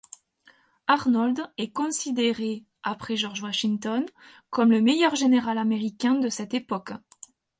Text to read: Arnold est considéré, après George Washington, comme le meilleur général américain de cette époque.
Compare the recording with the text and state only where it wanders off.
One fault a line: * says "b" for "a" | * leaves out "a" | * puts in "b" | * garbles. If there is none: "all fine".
all fine